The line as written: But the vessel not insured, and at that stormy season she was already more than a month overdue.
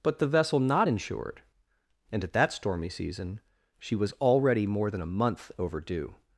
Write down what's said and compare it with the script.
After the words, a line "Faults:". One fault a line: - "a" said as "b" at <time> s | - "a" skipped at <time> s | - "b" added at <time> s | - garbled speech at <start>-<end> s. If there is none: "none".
But the vessel not insured, and at that stormy season she was already more than a month overdue.
Faults:
none